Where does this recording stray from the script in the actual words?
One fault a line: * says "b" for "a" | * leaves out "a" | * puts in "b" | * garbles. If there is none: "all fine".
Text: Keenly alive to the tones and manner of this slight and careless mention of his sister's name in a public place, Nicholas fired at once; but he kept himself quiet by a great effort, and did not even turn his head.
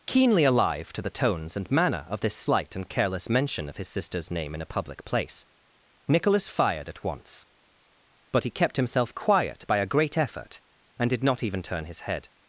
all fine